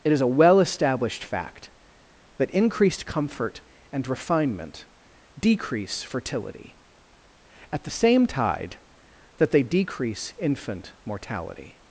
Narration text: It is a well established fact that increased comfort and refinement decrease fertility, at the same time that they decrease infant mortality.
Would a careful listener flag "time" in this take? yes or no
yes